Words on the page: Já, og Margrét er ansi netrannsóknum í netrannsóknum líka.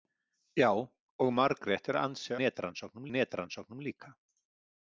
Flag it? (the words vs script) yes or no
no